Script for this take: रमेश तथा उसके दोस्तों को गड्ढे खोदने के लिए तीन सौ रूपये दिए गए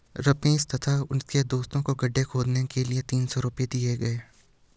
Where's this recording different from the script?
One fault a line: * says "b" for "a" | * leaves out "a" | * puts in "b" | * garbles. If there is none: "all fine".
all fine